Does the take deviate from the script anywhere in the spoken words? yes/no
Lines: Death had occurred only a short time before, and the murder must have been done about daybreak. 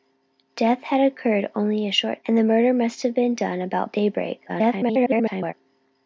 yes